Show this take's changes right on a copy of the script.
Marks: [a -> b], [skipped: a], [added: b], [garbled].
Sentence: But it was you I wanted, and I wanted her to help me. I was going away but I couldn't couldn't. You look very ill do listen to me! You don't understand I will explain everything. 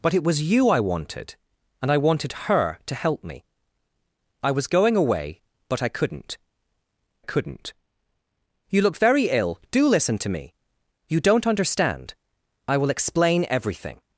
But it was you I wanted, and I wanted her to help me. I was going away but I couldn't couldn't. You look very ill do listen to me! You don't understand I will explain everything.